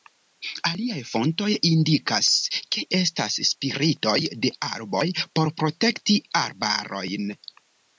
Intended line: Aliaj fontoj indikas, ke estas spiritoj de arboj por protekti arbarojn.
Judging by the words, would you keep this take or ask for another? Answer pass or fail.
pass